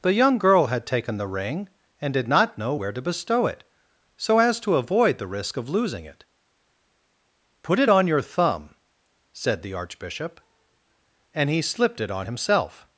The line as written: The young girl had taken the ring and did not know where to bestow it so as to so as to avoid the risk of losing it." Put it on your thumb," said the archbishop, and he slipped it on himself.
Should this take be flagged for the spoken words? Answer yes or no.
yes